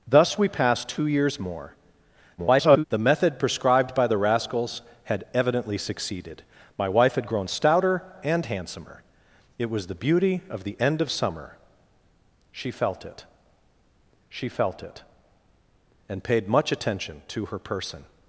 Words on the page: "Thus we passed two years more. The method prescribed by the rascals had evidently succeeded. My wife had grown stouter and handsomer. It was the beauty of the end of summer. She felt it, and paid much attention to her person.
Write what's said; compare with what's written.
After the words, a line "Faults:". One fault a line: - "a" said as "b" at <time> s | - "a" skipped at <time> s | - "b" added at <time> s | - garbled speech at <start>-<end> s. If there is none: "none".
"Thus we passed two years more. [garbled] The method prescribed by the rascals had evidently succeeded. My wife had grown stouter and handsomer. It was the beauty of the end of summer. She felt it she felt it, and paid much attention to her person.
Faults:
- garbled speech at 2.4-2.8 s
- "she felt it" added at 14.3 s